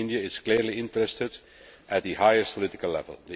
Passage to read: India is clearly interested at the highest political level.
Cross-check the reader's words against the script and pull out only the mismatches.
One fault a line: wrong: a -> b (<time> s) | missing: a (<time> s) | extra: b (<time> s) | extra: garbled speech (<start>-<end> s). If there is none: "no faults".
no faults